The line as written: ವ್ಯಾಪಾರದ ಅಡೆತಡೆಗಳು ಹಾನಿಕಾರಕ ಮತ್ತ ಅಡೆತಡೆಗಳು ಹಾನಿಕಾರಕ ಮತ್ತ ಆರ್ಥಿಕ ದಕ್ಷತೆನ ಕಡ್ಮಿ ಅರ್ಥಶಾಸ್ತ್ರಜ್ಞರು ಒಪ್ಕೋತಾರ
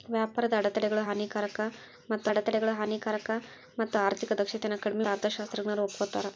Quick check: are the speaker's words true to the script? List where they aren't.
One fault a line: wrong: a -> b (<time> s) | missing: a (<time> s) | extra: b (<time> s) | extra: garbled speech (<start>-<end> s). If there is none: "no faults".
no faults